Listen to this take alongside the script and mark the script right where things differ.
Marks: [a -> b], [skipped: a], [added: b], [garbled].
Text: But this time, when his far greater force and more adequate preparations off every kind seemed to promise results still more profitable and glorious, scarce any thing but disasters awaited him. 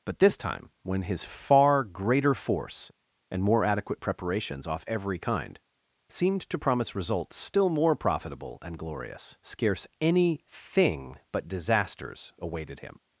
But this time, when his far greater force and more adequate preparations off every kind seemed to promise results still more profitable and glorious, scarce any thing but disasters awaited him.